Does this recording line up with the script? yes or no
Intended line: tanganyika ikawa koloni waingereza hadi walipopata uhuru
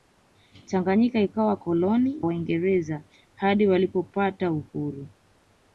yes